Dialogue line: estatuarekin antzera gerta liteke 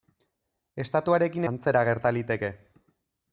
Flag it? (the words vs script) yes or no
no